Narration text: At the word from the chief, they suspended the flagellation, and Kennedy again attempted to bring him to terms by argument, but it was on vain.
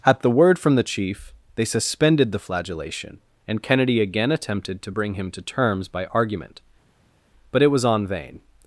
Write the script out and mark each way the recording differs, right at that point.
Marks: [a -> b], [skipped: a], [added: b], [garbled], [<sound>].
At the word from the chief, they suspended the flagellation, and Kennedy again attempted to bring him to terms by argument, but it was on vain.